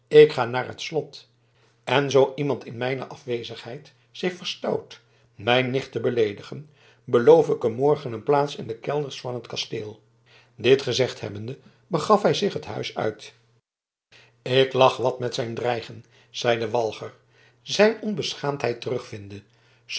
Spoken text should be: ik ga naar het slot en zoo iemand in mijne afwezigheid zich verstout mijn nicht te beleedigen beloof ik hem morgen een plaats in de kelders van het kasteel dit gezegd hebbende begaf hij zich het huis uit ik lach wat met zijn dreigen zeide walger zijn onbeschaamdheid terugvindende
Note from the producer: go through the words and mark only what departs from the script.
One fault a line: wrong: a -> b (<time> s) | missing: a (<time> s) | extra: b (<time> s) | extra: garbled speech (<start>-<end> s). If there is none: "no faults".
no faults